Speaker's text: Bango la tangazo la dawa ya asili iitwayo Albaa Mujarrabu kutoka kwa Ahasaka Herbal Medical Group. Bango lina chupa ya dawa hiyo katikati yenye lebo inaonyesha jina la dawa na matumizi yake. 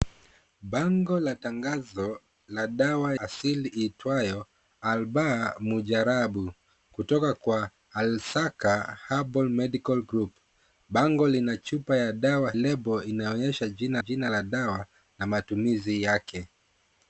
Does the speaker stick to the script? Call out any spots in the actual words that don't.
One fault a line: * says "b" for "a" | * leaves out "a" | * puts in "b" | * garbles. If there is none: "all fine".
* leaves out "ya"
* leaves out "hiyo katikati yenye"
* puts in "jina"